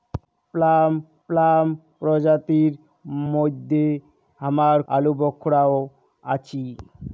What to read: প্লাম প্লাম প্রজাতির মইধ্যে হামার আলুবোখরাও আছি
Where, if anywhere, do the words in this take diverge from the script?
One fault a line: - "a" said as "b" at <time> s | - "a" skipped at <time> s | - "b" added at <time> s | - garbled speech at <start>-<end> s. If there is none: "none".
none